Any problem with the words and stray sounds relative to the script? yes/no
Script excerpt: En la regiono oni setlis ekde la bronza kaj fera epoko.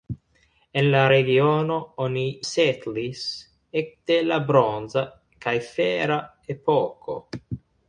no